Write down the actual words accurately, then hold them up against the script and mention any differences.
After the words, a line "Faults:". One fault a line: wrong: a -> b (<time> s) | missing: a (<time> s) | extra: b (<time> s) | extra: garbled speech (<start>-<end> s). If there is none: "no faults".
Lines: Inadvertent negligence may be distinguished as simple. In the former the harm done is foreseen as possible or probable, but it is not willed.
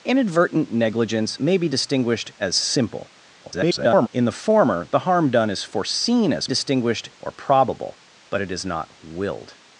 Inadvertent negligence may be distinguished as simple. [garbled] In the former the harm done is foreseen as distinguished or probable, but it is not willed.
Faults:
extra: garbled speech (3.4-4.1 s)
wrong: possible -> distinguished (6.4 s)